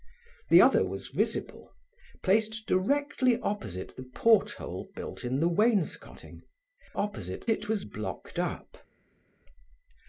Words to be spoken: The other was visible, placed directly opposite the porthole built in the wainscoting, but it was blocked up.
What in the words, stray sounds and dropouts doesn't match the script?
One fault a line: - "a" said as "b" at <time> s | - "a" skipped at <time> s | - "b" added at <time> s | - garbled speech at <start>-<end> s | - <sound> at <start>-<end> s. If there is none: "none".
- "but" said as "opposite" at 6.9 s